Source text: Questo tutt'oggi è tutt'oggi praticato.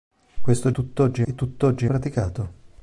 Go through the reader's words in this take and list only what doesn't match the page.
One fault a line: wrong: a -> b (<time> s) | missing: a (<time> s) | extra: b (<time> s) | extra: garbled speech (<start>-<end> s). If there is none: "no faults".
no faults